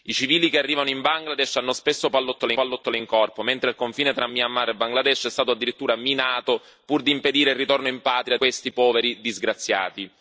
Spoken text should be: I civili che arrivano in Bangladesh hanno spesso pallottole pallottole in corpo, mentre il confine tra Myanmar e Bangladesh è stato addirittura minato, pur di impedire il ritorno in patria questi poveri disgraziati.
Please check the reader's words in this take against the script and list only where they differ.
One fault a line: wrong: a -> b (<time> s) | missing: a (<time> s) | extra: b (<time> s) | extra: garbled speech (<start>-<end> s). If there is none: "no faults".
no faults